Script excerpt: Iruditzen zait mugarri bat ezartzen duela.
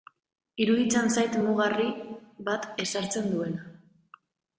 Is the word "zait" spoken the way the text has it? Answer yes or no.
yes